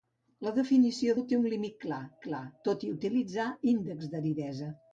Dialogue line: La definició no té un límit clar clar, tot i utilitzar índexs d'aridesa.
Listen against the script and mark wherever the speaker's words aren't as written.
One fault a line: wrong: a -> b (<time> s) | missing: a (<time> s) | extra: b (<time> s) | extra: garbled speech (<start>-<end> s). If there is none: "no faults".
no faults